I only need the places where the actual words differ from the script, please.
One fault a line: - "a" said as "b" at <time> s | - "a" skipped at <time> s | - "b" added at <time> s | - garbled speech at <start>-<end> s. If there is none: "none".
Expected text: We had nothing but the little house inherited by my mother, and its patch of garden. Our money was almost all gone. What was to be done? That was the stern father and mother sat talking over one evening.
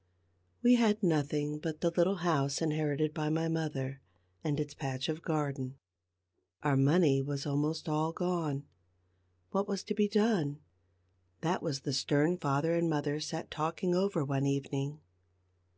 none